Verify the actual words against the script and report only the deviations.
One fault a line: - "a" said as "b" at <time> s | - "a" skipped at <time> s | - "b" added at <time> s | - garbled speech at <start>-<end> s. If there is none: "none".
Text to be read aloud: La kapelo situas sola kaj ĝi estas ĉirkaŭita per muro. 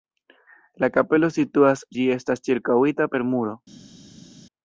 - "sola kaj" skipped at 1.9 s